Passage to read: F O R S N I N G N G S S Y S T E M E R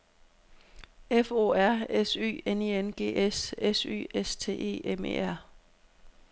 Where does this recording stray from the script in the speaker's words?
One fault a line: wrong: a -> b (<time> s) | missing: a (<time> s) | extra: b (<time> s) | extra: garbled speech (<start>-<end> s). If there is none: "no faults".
extra: Y (2.1 s)
missing: N G (3.2 s)